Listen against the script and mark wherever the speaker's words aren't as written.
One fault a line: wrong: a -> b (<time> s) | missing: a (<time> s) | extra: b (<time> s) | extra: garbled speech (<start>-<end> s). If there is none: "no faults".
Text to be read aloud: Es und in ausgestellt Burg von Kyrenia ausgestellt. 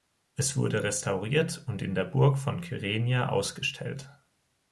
extra: wurde restauriert (0.6 s)
wrong: ausgestellt -> der (1.9 s)